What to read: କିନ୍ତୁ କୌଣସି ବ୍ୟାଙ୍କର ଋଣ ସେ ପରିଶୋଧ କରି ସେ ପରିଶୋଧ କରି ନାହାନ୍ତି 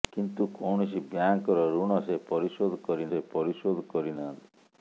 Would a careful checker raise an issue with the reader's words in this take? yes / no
no